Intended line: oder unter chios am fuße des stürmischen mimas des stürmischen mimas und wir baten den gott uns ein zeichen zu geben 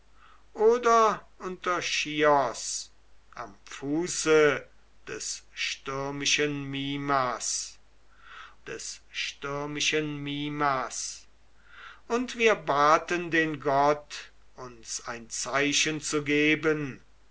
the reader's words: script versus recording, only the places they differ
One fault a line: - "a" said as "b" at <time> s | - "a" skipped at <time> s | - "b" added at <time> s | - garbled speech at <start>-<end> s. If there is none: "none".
none